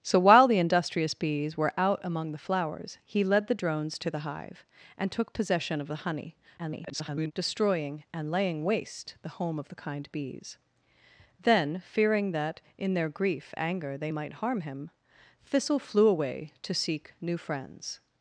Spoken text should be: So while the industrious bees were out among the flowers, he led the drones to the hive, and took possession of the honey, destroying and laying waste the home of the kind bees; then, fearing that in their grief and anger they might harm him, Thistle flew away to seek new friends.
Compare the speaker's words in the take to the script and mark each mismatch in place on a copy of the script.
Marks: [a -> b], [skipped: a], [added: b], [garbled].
So while the industrious bees were out among the flowers, he led the drones to the hive, and took possession of the honey, [garbled] destroying and laying waste the home of the kind bees; then, fearing that in their grief [skipped: and] anger they might harm him, Thistle flew away to seek new friends.